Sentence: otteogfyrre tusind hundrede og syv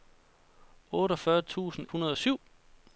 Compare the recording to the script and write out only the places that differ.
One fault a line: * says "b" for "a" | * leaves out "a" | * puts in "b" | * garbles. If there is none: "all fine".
all fine